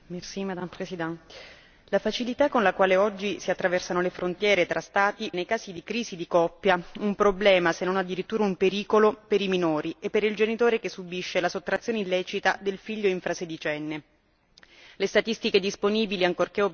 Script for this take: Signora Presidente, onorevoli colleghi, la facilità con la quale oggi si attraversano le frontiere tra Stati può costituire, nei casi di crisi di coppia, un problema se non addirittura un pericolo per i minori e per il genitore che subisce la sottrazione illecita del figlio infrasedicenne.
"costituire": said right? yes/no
no